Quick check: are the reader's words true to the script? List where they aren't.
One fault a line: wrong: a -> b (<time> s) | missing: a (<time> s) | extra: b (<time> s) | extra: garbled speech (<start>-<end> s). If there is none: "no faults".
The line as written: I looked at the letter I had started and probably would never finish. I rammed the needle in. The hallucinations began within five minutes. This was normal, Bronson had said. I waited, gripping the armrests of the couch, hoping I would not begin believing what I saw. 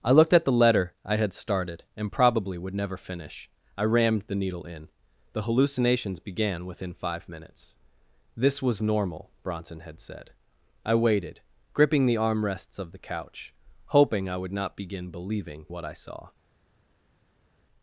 no faults